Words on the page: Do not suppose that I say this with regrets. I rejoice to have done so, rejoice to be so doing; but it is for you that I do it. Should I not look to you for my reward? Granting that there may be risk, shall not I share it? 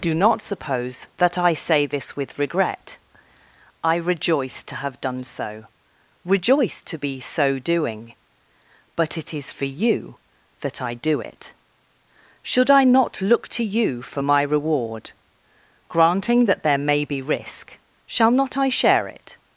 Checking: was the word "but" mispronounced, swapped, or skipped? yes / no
no